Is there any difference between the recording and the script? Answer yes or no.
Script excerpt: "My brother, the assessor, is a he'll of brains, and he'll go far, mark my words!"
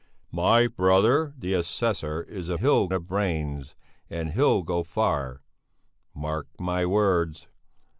no